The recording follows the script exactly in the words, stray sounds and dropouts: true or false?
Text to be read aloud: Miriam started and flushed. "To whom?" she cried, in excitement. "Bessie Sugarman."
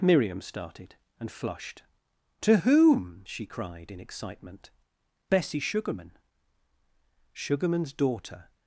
false